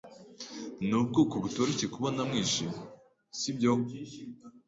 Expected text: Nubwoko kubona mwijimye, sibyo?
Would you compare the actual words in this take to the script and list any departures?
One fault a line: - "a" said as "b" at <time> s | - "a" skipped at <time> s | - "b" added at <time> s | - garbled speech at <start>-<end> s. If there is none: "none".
- "butoroshye" added at 1.4 s